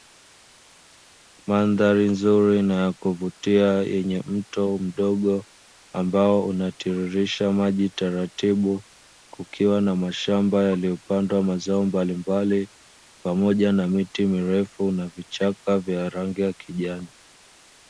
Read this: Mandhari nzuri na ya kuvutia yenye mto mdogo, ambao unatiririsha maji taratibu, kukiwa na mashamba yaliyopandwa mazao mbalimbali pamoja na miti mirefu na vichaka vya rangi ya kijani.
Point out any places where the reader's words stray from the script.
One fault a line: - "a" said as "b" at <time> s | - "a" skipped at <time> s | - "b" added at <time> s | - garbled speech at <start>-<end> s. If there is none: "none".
none